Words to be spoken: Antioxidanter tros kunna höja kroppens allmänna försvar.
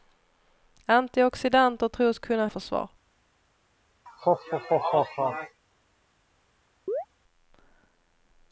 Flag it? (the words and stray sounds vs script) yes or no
yes